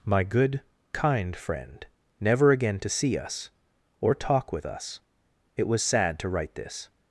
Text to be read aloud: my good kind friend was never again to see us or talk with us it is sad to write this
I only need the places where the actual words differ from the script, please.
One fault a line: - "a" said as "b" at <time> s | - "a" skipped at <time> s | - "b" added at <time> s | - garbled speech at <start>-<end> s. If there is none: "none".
- "was" skipped at 1.9 s
- "is" said as "was" at 5.7 s